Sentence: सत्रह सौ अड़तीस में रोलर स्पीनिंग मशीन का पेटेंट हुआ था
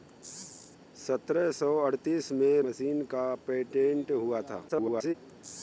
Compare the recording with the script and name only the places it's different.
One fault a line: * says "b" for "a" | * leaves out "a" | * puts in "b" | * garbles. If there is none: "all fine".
* leaves out "रोलर स्पीनिंग"
* garbles